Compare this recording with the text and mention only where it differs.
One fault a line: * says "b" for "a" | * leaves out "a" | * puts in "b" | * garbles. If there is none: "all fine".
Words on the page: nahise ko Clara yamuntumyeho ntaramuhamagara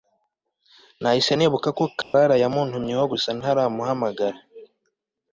* puts in "nibuka"
* puts in "gusa"